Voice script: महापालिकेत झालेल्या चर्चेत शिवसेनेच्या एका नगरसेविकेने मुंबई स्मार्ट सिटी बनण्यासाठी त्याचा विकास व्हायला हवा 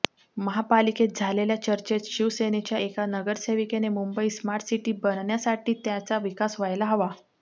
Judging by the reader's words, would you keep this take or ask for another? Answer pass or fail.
pass